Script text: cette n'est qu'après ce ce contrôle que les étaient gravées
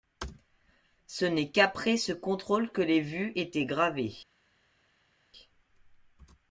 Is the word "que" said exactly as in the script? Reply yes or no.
yes